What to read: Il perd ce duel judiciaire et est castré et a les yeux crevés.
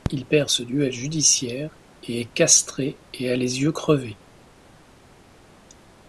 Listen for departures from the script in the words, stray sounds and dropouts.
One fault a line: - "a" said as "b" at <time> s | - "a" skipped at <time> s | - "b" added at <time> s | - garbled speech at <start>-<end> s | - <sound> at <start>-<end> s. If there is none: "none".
none